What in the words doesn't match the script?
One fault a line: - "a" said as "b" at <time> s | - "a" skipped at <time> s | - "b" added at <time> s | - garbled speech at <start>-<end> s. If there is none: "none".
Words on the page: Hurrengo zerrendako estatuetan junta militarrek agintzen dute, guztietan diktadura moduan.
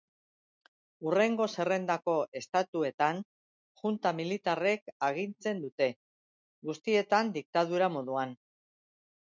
none